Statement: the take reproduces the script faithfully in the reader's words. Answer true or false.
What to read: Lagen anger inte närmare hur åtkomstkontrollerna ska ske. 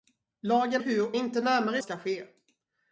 false